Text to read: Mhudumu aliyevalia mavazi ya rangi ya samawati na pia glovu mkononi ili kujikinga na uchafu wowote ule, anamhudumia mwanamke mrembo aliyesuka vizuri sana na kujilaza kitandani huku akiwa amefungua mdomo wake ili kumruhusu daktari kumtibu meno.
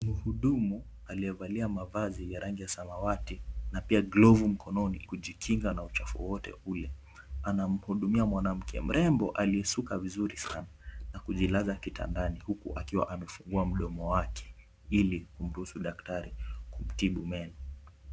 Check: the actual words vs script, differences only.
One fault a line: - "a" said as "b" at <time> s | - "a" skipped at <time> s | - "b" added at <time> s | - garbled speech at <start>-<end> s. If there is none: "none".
- "ili" skipped at 5.0 s